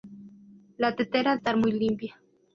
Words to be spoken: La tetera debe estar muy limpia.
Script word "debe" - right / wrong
wrong